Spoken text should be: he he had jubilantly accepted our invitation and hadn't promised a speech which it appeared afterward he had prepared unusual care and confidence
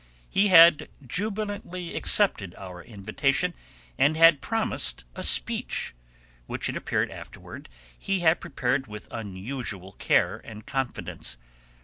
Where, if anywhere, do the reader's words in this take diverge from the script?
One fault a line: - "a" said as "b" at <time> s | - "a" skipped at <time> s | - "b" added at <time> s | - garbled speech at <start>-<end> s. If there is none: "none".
- "he" skipped at 0.5 s
- "hadn't" said as "had" at 4.2 s
- "with" added at 8.9 s